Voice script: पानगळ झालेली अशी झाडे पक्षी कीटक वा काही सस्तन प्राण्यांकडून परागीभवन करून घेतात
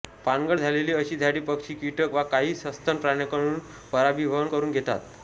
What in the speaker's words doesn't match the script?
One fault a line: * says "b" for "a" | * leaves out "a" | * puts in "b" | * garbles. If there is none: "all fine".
all fine